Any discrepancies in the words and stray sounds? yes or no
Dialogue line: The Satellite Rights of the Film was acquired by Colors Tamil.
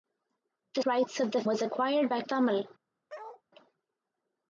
yes